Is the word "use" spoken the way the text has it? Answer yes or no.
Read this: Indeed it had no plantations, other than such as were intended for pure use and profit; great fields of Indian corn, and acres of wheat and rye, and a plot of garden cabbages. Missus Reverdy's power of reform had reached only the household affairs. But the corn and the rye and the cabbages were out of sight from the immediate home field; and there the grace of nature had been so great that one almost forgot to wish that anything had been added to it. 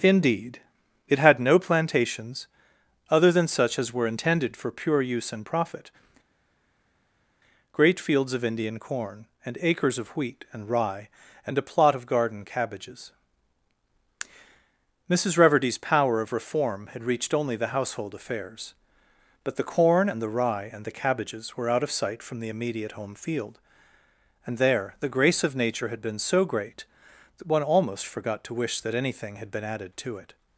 yes